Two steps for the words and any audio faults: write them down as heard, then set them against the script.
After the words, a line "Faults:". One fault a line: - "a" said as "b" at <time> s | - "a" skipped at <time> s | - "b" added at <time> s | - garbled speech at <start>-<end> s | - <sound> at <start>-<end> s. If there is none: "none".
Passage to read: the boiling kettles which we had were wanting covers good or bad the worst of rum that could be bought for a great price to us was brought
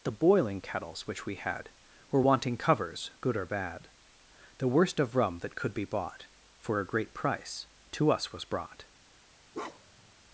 the boiling kettles which we had were wanting covers good or bad the worst of rum that could be bought for a great price to us was brought
Faults:
- bark at 9.5-10.1 s